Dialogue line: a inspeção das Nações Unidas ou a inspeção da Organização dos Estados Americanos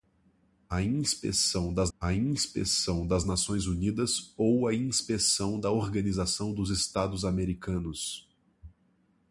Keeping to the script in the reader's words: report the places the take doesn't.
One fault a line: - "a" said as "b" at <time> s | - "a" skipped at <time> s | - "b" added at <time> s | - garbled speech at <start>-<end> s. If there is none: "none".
- "a inspeção das" added at 2.0 s